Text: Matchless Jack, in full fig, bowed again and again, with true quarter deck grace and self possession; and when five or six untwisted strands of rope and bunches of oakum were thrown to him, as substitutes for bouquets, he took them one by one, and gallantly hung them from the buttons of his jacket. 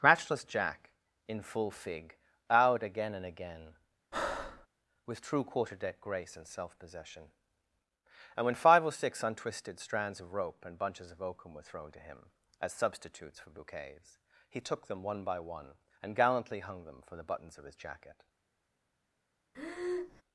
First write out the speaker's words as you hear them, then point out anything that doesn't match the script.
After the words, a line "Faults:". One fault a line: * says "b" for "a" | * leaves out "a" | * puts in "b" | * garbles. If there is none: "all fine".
Matchless Jack, in full fig, bowed again and again, with true quarter deck grace and self possession; and when five or six untwisted strands of rope and bunches of oakum were thrown to him, as substitutes for bouquets, he took them one by one, and gallantly hung them for the buttons of his jacket.
Faults:
* says "for" for "from"